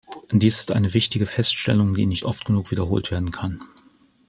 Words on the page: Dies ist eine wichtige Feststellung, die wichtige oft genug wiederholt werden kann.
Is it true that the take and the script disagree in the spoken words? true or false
true